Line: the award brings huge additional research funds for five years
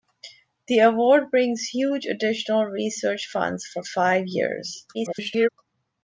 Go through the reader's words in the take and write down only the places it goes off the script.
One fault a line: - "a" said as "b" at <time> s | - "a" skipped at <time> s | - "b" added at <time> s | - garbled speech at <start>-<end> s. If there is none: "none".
- garbled speech at 4.9-5.5 s